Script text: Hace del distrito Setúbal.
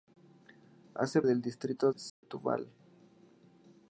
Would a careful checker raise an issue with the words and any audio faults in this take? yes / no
yes